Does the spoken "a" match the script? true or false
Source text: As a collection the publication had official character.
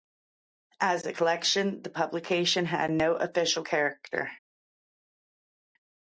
true